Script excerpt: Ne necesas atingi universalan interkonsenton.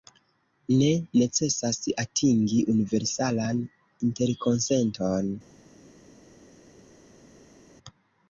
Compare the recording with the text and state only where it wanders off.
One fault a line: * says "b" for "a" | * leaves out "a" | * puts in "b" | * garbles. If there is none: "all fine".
all fine